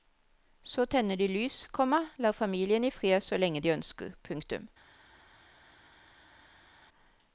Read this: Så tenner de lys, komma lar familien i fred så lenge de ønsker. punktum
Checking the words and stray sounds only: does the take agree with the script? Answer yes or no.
yes